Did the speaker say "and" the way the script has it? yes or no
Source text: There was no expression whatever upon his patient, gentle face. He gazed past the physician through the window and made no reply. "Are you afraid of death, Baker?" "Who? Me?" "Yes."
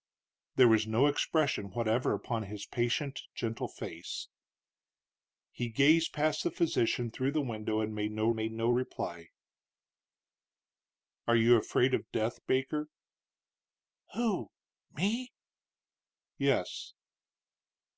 yes